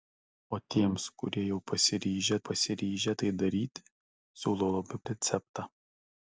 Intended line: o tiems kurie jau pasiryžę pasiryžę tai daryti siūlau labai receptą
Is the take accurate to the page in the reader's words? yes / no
yes